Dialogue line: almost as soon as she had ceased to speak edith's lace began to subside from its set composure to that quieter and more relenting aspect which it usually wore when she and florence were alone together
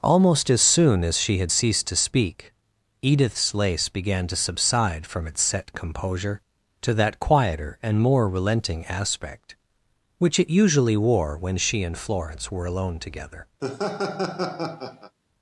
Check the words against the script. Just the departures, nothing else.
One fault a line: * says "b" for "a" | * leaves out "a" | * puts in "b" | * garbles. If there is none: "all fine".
all fine